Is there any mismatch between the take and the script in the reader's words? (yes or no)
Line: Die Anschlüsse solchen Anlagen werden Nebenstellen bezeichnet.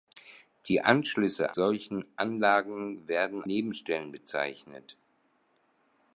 no